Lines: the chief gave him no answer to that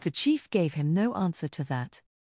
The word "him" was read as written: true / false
true